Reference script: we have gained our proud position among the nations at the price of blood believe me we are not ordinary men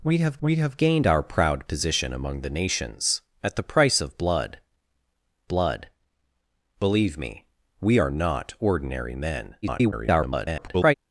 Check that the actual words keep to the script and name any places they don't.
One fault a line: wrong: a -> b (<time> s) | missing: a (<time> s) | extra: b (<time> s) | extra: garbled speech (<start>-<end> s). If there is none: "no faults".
extra: we have (0.4 s)
extra: blood (5.5 s)
extra: garbled speech (9.6-10.9 s)